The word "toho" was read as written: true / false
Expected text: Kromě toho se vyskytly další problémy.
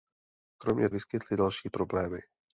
false